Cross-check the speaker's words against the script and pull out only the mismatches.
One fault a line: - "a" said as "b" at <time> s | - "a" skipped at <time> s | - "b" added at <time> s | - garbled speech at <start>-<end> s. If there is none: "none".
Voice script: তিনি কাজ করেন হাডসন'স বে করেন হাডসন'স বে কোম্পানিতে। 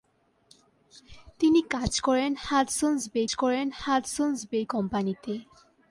none